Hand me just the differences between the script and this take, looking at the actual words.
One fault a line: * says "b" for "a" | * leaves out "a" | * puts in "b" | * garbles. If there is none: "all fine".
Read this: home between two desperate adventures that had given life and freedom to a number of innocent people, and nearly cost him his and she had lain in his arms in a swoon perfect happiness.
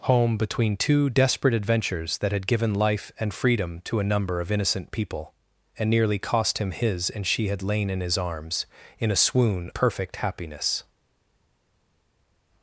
all fine